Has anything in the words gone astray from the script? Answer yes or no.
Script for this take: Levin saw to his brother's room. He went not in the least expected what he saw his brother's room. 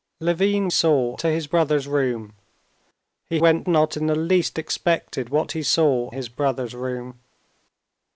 no